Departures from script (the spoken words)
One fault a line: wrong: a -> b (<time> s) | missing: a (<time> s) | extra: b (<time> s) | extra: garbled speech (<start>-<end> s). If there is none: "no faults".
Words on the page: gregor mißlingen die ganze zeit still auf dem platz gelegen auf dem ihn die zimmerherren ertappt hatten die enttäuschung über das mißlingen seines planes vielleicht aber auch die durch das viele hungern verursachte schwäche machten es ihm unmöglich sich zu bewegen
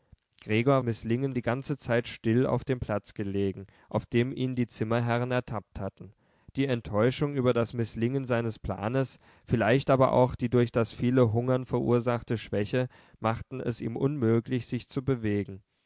no faults